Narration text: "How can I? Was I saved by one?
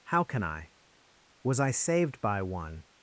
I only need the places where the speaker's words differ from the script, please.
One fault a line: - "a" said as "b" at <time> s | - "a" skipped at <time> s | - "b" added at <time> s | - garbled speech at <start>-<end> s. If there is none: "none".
none